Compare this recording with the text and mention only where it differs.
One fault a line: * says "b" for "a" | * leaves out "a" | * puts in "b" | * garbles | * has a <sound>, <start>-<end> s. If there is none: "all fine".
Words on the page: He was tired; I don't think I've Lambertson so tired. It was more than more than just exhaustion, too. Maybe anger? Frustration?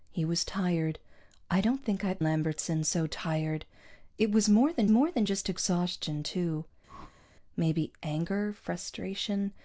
* has a whoosh, 6.9-7.3 s